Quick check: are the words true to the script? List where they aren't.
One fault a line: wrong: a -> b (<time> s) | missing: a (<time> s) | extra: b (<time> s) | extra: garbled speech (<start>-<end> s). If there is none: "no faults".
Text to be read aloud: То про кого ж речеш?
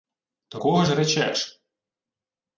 missing: про (0.6 s)